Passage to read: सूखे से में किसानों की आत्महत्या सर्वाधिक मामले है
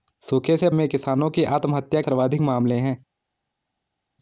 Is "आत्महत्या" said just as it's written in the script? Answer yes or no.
yes